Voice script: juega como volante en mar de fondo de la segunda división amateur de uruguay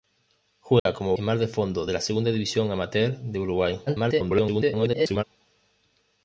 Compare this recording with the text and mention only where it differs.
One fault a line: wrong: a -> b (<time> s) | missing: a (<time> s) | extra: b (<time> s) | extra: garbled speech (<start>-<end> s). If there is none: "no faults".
missing: volante (1.1 s)
extra: garbled speech (3.9-5.2 s)